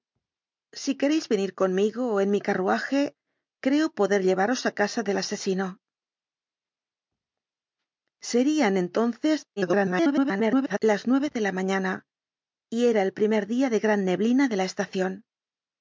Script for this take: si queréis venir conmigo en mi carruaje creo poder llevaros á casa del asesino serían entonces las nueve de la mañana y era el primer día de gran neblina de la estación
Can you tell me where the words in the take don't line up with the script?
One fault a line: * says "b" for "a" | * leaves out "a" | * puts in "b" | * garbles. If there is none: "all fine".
* garbles